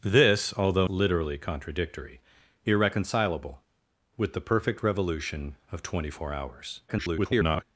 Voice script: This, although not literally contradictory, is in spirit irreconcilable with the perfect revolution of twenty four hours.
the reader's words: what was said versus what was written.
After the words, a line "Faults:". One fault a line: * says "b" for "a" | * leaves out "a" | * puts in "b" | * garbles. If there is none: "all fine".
This, although literally contradictory, irreconcilable with the perfect revolution of twenty four hours. [garbled]
Faults:
* leaves out "not"
* leaves out "is in spirit"
* garbles